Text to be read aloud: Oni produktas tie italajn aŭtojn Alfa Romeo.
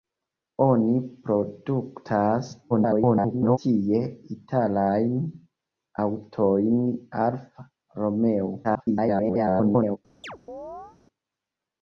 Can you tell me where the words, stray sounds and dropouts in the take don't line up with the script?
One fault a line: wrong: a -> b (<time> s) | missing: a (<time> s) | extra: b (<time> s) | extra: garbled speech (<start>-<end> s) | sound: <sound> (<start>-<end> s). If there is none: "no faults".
extra: garbled speech (2.7-3.6 s)
extra: garbled speech (8.6-10.0 s)
sound: chirp (10.2-11.0 s)